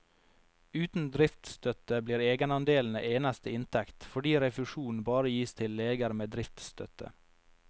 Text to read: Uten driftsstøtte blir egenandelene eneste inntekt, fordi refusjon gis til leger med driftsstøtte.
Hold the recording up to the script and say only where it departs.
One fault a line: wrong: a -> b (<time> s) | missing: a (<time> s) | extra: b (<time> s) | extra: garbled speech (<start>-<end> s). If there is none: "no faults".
extra: bare (5.1 s)